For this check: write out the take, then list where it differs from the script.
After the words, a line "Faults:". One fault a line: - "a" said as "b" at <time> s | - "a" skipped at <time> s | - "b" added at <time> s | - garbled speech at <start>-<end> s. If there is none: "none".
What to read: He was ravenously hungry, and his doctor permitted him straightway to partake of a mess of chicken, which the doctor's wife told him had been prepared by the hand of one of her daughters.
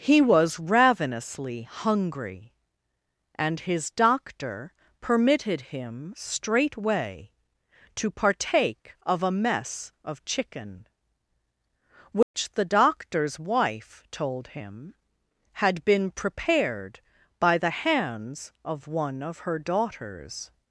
He was ravenously hungry, and his doctor permitted him straightway to partake of a mess of chicken, which the doctor's wife told him had been prepared by the hands of one of her daughters.
Faults:
- "hand" said as "hands" at 17.8 s